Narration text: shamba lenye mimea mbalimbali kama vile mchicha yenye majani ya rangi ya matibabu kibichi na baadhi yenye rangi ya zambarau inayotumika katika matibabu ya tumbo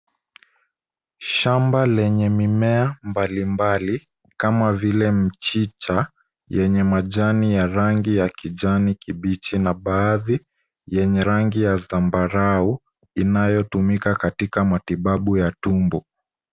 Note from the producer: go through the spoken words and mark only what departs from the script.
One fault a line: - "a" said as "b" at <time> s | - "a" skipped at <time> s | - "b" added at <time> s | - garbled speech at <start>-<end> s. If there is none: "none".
- "matibabu" said as "kijani" at 8.3 s